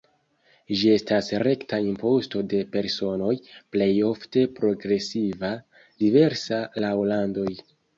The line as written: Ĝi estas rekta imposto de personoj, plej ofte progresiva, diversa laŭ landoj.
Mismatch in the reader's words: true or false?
false